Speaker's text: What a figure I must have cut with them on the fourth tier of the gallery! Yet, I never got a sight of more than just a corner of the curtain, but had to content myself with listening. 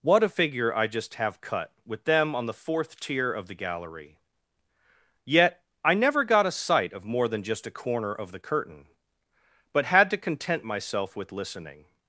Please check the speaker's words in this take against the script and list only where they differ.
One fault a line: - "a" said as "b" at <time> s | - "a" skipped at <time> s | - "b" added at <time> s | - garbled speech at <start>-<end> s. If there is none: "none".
- "must" said as "just" at 0.9 s